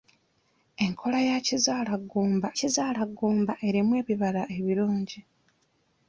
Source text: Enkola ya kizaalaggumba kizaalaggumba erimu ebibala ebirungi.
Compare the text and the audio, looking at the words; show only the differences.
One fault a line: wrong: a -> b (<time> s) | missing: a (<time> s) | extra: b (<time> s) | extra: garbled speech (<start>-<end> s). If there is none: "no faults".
no faults